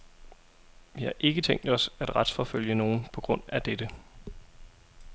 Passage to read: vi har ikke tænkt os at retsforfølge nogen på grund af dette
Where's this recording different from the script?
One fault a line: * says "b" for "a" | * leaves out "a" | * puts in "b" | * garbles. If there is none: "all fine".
all fine